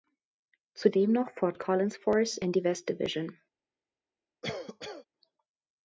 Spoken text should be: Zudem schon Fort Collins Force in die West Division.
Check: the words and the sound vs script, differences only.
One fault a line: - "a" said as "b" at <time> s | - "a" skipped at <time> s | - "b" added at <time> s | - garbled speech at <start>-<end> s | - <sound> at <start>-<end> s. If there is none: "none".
- "schon" said as "noch" at 1.1 s
- cough at 4.4-5.1 s